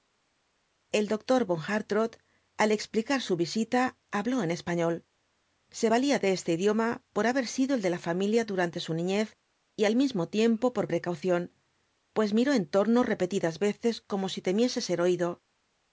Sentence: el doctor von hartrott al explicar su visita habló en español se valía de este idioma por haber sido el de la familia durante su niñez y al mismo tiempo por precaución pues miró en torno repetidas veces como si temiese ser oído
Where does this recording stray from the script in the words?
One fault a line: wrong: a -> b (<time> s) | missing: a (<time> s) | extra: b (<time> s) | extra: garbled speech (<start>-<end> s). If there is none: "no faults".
no faults